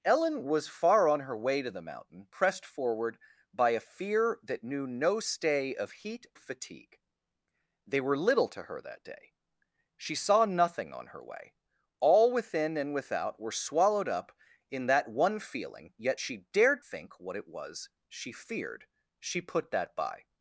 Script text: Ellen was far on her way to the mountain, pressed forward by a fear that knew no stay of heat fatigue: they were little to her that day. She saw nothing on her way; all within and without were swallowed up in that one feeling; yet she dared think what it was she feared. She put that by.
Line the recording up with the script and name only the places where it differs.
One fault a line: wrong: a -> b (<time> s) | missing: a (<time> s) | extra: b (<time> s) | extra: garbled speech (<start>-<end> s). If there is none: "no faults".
no faults